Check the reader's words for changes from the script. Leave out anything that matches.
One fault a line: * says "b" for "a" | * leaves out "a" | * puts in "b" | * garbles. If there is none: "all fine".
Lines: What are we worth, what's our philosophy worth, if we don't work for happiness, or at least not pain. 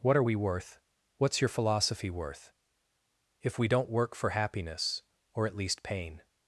* says "your" for "our"
* leaves out "not"